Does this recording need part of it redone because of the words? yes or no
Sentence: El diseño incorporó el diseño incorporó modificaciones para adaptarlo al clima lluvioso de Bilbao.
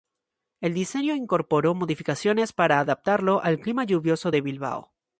yes